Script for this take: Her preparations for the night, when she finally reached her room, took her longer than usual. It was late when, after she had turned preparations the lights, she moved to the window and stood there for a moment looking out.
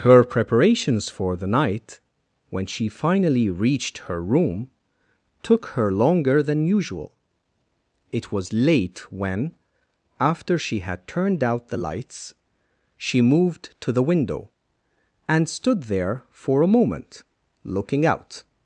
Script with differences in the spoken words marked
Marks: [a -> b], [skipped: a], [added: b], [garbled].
Her preparations for the night, when she finally reached her room, took her longer than usual. It was late when, after she had turned [preparations -> out] the lights, she moved to the window and stood there for a moment looking out.